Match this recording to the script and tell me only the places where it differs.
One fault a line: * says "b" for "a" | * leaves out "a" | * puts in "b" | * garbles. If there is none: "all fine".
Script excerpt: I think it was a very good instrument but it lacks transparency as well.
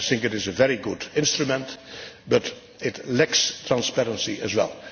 * says "is" for "was"